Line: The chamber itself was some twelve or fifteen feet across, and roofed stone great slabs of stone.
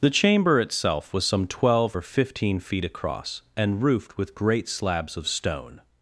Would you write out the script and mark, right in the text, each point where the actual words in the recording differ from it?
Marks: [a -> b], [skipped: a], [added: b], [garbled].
The chamber itself was some twelve or fifteen feet across, and roofed [stone -> with] great slabs of stone.